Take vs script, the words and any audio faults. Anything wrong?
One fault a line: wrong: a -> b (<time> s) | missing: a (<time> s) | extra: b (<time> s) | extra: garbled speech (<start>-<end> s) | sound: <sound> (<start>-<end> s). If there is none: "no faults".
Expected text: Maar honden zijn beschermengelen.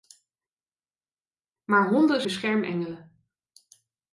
missing: zijn (2.2 s)